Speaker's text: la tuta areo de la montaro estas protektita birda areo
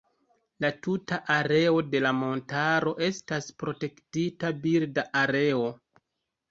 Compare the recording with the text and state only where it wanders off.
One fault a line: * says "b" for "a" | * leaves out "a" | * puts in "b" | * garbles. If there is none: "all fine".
all fine